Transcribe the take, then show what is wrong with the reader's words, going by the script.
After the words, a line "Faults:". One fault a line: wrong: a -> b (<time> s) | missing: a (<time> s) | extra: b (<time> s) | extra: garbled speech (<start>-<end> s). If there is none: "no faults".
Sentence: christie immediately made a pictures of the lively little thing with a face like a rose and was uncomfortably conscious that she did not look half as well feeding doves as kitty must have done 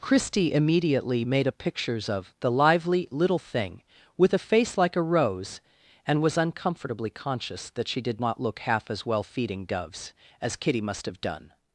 christie immediately made a pictures of the lively little thing with a face like a rose and was uncomfortably conscious that she did not look half as well feeding doves as kitty must have done
Faults:
no faults